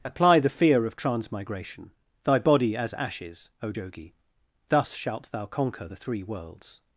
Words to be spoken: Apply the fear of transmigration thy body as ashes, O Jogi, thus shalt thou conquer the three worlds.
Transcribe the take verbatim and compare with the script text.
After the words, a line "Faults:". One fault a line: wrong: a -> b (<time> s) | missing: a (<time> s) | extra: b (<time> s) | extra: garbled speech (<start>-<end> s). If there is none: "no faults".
Apply the fear of transmigration thy body as ashes, O Jogi, thus shalt thou conquer the three worlds.
Faults:
no faults